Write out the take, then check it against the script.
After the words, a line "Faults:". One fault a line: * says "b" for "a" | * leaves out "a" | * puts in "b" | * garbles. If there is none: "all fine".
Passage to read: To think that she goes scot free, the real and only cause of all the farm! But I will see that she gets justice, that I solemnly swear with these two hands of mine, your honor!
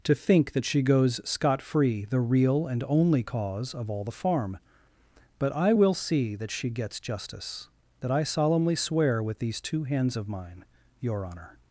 To think that she goes scot free, the real and only cause of all the farm! But I will see that she gets justice, that I solemnly swear with these two hands of mine, your honor!
Faults:
all fine